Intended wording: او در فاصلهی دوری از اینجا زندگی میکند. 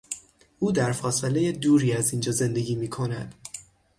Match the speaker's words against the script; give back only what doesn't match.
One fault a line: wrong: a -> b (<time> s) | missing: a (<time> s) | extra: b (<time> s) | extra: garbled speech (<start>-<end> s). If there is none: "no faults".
no faults